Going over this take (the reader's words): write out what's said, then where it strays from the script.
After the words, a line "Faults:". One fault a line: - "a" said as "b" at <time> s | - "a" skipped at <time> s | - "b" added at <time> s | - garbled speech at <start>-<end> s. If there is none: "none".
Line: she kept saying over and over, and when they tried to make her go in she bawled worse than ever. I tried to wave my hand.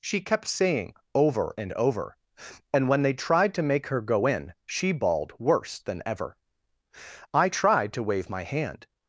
she kept saying over and over, and when they tried to make her go in she bawled worse than ever. I tried to wave my hand.
Faults:
none